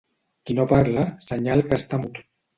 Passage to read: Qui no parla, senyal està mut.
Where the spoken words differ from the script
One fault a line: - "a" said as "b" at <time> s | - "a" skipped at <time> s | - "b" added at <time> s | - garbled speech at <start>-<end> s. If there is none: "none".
- "que" added at 1.7 s